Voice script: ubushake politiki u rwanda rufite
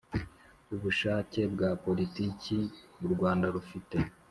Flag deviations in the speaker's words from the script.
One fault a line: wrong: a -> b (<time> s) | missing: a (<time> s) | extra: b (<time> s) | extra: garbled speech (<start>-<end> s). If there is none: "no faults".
extra: bwa (1.5 s)